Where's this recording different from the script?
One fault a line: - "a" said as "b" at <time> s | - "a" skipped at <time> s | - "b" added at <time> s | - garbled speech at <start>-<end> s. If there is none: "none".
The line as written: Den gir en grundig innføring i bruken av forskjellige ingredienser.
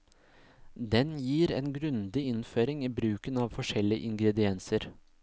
none